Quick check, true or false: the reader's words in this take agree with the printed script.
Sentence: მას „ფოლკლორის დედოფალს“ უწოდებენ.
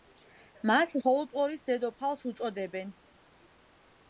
true